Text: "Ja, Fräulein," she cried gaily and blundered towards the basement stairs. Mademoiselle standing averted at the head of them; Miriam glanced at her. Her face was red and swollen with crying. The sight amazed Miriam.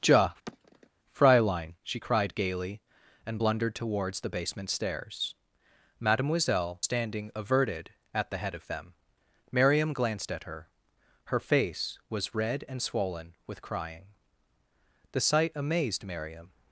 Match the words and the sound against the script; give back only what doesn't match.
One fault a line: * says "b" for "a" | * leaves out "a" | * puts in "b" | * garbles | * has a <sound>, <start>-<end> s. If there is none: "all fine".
* has a sigh, 0.5-0.9 s